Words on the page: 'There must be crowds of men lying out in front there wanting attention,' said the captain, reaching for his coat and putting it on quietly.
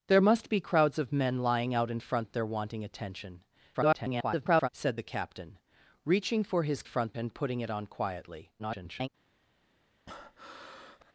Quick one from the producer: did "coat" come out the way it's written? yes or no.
no